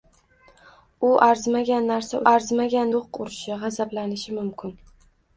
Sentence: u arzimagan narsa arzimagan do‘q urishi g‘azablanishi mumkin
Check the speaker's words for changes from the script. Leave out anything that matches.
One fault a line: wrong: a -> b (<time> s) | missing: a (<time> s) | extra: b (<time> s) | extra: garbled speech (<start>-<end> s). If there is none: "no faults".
no faults